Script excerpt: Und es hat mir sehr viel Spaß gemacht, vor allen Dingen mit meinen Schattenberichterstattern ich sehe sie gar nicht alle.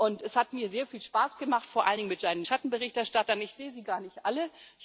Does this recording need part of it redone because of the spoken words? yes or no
no